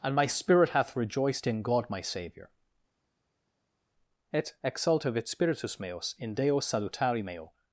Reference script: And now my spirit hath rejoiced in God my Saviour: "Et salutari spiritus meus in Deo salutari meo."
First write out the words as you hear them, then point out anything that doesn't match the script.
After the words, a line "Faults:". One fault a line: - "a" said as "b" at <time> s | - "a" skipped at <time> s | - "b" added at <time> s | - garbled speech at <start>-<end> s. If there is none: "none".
And my spirit hath rejoiced in God my Saviour: "Et exultavit spiritus meus in Deo salutari meo."
Faults:
- "now" skipped at 0.1 s
- "salutari" said as "exultavit" at 4.6 s